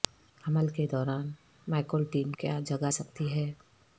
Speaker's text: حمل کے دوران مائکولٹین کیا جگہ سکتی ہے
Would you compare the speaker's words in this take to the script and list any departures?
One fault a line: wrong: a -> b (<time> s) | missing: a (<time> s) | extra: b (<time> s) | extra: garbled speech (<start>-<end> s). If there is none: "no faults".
no faults